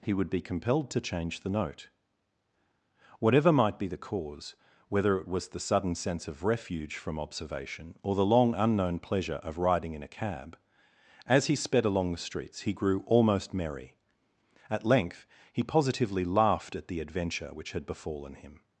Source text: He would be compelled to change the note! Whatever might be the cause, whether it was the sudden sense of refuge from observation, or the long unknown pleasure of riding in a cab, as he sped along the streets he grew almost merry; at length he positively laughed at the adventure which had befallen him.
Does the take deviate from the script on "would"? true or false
false